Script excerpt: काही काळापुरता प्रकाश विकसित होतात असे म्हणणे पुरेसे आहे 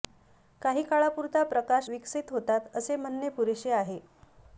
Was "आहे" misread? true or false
false